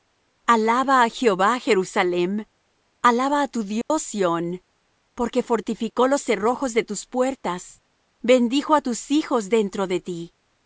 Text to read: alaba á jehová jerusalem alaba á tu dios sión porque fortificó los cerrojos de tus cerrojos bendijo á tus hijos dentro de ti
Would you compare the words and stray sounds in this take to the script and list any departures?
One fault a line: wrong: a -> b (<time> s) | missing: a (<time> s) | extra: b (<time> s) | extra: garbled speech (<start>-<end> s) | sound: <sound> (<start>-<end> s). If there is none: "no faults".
sound: dropout (3.8-3.9 s)
wrong: cerrojos -> puertas (7.0 s)